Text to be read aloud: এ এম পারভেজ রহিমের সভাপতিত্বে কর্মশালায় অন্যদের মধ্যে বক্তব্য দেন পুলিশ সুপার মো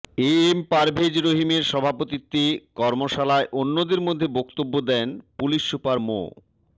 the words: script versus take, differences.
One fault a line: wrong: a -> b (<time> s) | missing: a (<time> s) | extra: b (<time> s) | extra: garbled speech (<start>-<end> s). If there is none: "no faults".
no faults